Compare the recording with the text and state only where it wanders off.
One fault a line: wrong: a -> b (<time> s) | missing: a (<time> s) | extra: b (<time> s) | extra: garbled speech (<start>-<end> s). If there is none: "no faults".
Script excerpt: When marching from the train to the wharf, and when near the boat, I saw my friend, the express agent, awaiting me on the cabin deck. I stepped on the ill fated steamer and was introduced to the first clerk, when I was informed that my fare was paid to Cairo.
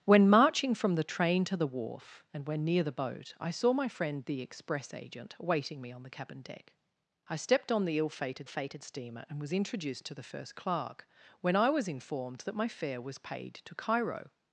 extra: fated (8.5 s)